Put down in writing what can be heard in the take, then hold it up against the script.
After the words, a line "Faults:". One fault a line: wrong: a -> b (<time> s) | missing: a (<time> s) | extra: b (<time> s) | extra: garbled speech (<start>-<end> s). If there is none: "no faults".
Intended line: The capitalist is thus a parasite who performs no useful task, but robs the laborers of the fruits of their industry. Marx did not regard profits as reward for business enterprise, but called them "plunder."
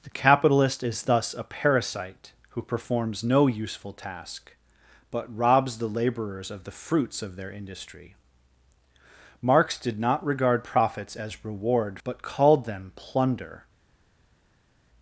The capitalist is thus a parasite who performs no useful task, but robs the laborers of the fruits of their industry. Marx did not regard profits as reward but called them "plunder."
Faults:
missing: for business enterprise (12.0 s)